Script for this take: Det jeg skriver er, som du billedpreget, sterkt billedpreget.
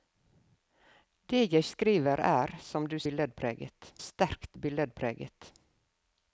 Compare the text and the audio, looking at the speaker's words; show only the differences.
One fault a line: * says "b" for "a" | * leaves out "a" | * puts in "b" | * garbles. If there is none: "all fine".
all fine